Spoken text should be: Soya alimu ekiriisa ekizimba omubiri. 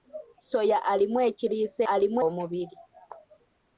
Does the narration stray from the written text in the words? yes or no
yes